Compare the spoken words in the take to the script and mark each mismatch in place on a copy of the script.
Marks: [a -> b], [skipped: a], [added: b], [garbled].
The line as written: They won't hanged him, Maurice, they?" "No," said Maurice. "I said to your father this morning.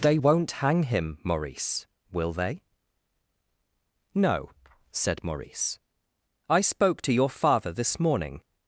They won't [hanged -> hang] him, Maurice, [added: will] they?" "No," said Maurice. "I [said -> spoke] to your father this morning.